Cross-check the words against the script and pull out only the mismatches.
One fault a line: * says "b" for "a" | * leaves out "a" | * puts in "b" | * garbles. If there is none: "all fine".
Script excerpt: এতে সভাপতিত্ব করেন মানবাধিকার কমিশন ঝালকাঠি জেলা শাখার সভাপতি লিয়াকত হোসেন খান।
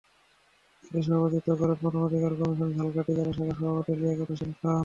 all fine